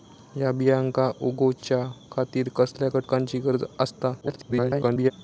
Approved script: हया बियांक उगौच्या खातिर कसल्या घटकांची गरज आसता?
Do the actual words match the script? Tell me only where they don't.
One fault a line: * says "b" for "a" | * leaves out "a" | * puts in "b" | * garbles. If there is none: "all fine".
* garbles